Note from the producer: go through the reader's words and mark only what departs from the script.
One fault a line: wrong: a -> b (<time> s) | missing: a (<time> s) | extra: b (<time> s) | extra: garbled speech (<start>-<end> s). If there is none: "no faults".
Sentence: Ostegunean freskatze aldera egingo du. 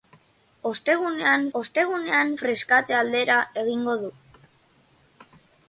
extra: ostegunean (1.6 s)